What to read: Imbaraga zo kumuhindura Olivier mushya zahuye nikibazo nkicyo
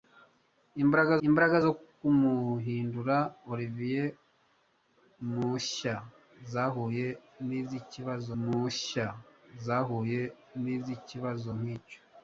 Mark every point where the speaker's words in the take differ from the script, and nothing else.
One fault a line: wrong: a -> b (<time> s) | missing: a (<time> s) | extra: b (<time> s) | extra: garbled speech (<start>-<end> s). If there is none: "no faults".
extra: imbaraga (1.3 s)
extra: mushya zahuye nikibazo (8.4 s)